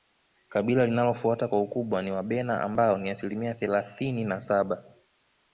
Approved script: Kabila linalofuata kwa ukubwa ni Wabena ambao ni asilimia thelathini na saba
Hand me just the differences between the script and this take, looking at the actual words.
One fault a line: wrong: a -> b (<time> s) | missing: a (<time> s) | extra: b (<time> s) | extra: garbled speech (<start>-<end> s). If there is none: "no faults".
no faults